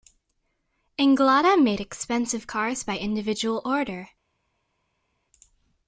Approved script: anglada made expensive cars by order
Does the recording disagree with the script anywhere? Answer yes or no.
yes